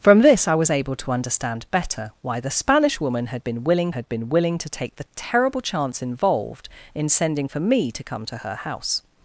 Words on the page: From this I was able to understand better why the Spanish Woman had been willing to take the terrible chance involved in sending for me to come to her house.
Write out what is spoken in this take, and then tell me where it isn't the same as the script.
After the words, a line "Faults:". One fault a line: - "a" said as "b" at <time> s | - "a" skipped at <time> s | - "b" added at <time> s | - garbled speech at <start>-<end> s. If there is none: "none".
From this I was able to understand better why the Spanish Woman had been willing had been willing to take the terrible chance involved in sending for me to come to her house.
Faults:
- "had been willing" added at 3.9 s